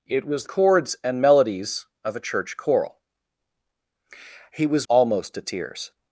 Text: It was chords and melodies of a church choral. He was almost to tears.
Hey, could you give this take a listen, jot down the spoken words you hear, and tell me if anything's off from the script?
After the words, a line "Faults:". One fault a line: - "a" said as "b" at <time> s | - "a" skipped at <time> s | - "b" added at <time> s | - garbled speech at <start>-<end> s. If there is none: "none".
It was chords and melodies of a church choral. He was almost to tears.
Faults:
none